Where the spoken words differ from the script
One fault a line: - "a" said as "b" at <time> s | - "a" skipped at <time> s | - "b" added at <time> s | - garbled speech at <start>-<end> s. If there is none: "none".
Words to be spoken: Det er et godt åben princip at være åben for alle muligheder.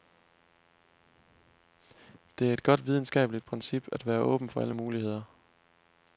- "åben" said as "videnskabeligt" at 2.9 s